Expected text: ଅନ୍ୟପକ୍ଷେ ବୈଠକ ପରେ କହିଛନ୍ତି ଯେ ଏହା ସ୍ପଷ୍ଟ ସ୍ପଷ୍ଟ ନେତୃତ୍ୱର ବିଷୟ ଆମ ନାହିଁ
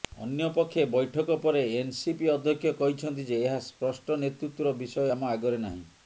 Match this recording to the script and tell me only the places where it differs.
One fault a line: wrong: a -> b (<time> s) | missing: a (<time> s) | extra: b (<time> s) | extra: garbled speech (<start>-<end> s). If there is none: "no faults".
extra: ଏନସିପି ଅଧ୍ୟକ୍ଷ (1.7 s)
missing: ସ୍ପଷ୍ଟ (4.2 s)
extra: ଆଗରେ (5.3 s)